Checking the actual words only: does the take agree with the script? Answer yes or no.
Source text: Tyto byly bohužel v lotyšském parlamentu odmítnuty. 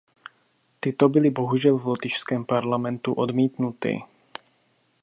yes